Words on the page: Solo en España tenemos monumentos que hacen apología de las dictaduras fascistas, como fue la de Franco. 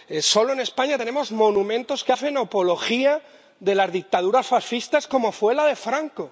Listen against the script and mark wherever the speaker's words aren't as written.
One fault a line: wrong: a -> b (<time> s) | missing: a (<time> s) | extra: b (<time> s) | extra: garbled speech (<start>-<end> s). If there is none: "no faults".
no faults